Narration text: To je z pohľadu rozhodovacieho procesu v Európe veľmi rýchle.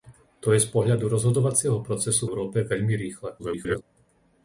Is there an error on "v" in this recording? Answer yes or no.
yes